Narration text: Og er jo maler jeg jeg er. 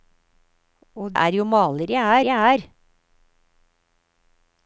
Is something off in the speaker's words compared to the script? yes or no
no